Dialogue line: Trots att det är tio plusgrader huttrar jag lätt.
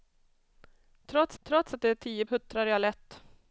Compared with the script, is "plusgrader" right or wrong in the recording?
wrong